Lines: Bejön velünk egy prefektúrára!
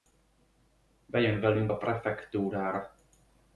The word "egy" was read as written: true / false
false